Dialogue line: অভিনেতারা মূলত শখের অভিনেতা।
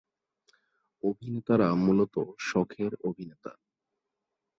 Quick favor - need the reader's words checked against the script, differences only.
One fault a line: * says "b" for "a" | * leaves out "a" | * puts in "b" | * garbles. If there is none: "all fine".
all fine